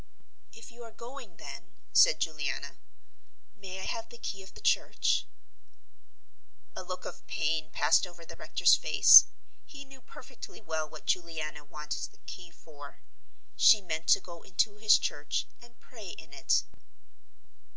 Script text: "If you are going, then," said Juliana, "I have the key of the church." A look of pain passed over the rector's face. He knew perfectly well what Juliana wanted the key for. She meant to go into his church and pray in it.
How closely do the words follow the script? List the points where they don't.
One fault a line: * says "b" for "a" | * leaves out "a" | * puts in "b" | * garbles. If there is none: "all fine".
* puts in "may"